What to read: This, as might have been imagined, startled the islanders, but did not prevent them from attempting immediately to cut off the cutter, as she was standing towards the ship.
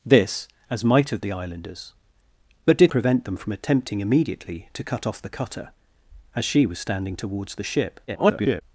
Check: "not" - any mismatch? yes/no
yes